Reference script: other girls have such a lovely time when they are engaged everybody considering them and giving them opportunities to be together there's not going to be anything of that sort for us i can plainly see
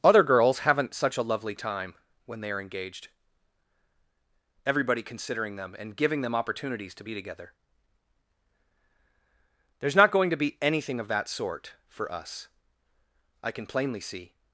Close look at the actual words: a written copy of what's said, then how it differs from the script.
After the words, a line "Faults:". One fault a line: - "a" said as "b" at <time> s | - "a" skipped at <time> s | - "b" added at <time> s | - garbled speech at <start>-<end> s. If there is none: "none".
other girls haven't such a lovely time when they are engaged everybody considering them and giving them opportunities to be together there's not going to be anything of that sort for us i can plainly see
Faults:
- "have" said as "haven't" at 0.6 s